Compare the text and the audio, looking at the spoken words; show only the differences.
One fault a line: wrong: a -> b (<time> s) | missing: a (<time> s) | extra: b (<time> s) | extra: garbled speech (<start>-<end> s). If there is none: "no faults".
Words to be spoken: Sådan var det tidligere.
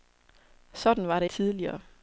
no faults